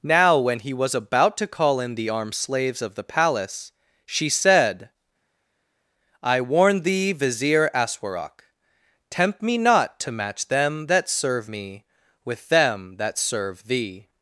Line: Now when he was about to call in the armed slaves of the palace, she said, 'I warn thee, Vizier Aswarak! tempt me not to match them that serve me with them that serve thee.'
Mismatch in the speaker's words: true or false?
false